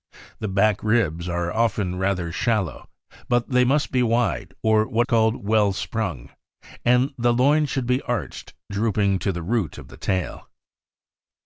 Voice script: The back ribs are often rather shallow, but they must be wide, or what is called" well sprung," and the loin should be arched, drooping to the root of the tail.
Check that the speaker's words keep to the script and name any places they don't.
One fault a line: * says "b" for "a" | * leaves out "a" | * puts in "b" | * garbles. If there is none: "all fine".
* leaves out "is"